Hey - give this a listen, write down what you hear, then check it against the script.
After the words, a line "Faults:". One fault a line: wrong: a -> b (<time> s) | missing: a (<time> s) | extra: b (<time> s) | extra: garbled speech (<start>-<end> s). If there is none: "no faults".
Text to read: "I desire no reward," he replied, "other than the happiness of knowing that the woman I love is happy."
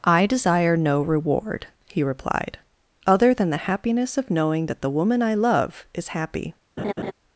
"I desire no reward," he replied, "other than the happiness of knowing that the woman I love is happy."
Faults:
no faults